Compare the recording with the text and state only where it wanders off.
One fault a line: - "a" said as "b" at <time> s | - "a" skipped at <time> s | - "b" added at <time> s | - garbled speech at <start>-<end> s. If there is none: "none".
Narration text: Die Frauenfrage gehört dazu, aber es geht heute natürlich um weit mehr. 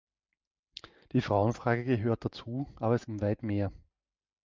- "geht heute natürlich" skipped at 3.0 s